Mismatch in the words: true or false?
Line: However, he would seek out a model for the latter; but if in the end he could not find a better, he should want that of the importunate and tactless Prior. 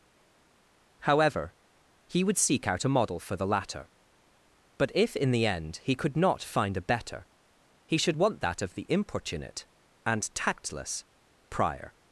false